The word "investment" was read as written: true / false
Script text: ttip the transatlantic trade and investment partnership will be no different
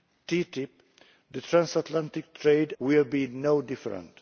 false